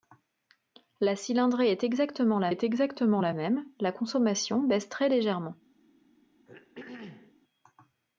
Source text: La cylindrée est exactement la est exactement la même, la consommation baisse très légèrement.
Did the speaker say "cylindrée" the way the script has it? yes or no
yes